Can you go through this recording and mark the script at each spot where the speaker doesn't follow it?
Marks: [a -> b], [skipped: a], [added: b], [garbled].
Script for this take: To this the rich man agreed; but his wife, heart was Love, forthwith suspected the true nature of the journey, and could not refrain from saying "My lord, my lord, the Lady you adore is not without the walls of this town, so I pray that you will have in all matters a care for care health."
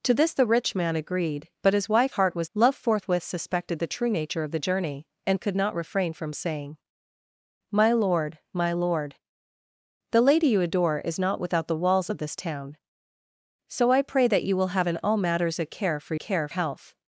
To this the rich man agreed; but his wife, heart was Love, forthwith suspected the true nature of the journey, and could not refrain from saying "My lord, my lord, the Lady you adore is not without the walls of this town, so I pray that you will have in all matters a care for care health."